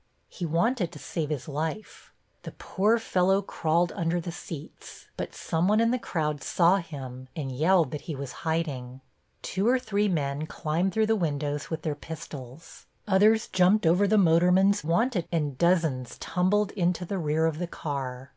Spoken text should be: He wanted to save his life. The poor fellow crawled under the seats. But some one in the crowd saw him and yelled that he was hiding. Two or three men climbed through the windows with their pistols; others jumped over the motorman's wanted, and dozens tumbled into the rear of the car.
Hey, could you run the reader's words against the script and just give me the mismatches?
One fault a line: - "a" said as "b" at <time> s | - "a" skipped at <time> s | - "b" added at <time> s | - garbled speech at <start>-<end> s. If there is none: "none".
none